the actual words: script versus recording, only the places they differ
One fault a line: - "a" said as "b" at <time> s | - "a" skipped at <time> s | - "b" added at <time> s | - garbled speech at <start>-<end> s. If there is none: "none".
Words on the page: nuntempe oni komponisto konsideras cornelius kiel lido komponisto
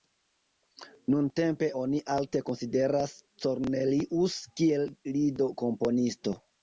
- "komponisto" said as "alte" at 2.2 s